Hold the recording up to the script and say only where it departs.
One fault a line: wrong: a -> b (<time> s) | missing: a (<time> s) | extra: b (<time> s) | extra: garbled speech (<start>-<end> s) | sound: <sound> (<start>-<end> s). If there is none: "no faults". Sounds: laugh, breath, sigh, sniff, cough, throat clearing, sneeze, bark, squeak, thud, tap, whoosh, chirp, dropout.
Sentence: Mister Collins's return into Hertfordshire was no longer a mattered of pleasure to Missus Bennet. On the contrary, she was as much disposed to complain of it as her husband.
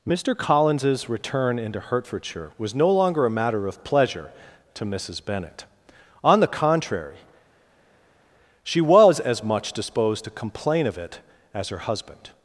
wrong: mattered -> matter (3.3 s)